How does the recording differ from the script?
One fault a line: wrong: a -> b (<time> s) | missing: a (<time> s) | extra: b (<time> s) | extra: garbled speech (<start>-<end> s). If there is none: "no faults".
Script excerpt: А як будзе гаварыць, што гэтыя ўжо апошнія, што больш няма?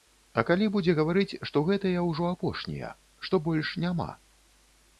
wrong: як -> калі (0.5 s)